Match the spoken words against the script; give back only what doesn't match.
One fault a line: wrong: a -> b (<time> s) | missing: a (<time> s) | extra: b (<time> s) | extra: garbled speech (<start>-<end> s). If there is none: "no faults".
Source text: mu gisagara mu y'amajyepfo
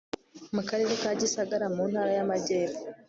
extra: karere ka (0.7 s)
extra: ntara (1.9 s)